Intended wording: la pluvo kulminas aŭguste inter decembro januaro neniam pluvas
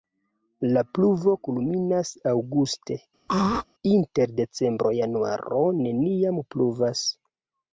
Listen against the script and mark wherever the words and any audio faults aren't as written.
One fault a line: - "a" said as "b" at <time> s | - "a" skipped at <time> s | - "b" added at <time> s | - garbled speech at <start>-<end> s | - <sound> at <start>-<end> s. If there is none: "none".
- throat clearing at 3.3-3.7 s